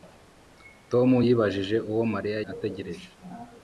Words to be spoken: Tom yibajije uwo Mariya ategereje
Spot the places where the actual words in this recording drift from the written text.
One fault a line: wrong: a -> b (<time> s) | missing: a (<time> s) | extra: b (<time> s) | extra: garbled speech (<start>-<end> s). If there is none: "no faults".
no faults